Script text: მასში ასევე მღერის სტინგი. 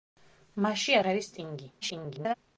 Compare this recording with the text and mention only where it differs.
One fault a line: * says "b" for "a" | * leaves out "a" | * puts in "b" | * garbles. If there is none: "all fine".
* leaves out "ასევე"
* garbles